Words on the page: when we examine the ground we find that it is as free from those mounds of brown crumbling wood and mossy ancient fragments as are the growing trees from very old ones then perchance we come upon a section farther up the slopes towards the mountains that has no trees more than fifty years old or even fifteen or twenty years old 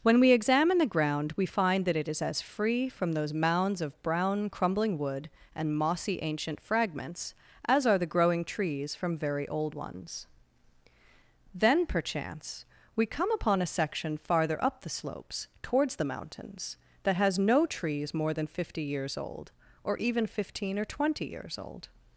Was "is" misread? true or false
false